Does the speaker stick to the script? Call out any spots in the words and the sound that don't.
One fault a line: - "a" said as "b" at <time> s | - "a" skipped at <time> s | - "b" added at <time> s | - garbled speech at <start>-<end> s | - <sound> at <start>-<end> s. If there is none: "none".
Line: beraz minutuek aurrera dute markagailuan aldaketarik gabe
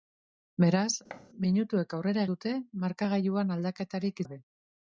- thud at 1.1-1.3 s